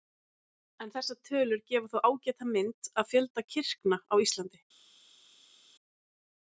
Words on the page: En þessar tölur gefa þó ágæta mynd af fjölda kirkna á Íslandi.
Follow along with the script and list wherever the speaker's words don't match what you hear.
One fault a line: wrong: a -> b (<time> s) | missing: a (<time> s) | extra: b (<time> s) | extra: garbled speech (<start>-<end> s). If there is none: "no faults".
no faults